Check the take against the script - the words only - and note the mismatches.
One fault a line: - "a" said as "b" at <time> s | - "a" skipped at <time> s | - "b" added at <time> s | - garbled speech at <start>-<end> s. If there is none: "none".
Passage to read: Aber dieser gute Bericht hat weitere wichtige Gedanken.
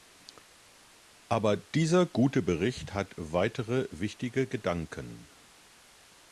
none